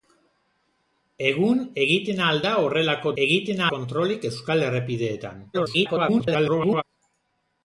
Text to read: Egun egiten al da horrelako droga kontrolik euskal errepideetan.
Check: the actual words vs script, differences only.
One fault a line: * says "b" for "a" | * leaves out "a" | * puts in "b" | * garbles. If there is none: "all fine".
* says "egiten" for "droga"
* garbles